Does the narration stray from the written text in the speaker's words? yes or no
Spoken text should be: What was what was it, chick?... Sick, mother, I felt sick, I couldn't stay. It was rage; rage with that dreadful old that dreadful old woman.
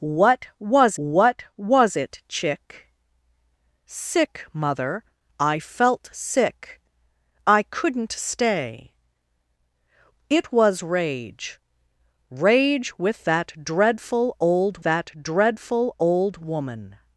no